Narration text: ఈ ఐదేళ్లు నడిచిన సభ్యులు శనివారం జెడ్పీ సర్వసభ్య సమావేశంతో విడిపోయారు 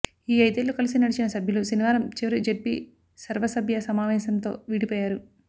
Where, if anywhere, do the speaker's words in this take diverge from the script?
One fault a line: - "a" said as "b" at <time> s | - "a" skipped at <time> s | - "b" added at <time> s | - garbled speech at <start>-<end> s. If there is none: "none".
- "కలిసి" added at 0.8 s
- "చివరి" added at 2.2 s